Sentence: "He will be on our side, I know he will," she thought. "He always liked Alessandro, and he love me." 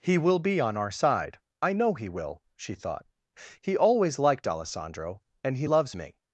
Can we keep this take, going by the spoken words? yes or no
no